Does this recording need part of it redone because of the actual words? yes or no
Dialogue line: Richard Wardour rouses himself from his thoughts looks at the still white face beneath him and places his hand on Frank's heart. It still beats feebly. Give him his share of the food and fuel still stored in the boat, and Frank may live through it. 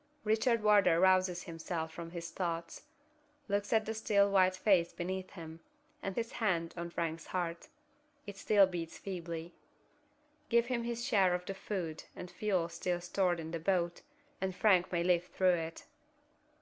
yes